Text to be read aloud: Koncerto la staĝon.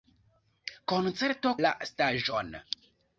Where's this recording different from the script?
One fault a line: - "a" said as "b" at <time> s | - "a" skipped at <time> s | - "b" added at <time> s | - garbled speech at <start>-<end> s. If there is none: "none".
none